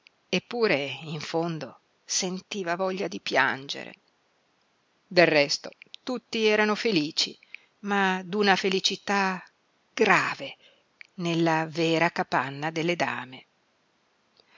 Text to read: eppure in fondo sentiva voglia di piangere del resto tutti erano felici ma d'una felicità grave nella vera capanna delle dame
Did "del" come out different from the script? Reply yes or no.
no